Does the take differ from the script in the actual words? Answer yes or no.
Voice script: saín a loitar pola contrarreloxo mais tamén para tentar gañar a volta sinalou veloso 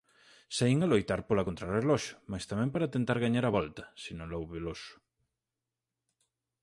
no